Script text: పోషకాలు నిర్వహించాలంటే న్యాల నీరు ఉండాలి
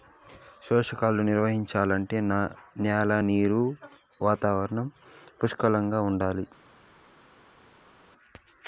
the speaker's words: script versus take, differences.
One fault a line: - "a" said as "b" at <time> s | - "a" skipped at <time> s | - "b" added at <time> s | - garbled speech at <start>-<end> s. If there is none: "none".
- "వాతావరణం పుష్కలంగా" added at 4.2 s